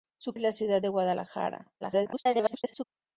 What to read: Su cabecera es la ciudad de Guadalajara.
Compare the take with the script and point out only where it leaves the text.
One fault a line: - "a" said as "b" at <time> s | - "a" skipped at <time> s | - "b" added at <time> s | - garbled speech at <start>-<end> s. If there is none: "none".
- "cabecera" skipped at 0.3 s
- garbled speech at 1.8-2.8 s